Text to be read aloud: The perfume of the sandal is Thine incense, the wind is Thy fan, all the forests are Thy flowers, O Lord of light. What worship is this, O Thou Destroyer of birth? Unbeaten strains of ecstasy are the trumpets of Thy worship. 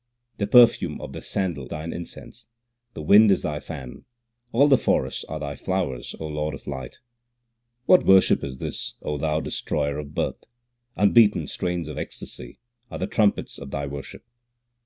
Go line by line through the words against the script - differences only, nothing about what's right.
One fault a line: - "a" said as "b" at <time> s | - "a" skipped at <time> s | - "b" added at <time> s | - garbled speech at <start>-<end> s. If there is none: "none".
- "is" skipped at 1.7 s